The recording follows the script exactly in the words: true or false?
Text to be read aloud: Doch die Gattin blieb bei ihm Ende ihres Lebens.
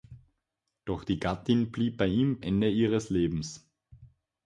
true